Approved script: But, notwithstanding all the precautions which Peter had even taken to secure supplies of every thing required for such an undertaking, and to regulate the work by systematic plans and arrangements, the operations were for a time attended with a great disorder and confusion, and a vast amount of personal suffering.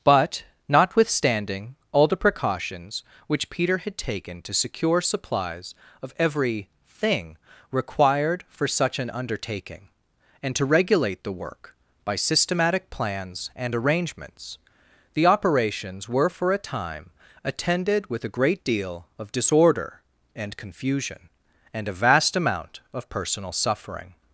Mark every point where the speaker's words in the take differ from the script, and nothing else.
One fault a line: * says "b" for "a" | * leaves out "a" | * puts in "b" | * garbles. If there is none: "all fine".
* leaves out "even"
* puts in "deal of"